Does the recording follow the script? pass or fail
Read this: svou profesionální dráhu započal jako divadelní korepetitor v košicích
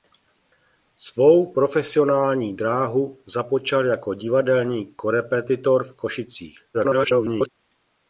fail